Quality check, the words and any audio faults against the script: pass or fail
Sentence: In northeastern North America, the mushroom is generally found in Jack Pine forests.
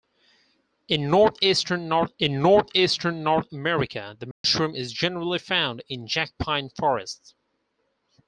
fail